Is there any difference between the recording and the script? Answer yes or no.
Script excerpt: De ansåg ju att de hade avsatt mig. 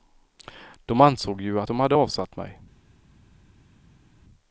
no